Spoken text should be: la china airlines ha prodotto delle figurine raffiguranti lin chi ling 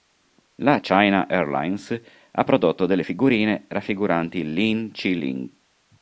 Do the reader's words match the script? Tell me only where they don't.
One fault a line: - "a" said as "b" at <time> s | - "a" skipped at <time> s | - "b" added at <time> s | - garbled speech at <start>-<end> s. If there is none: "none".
none